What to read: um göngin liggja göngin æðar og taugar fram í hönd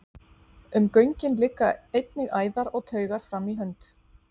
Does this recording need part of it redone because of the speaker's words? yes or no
yes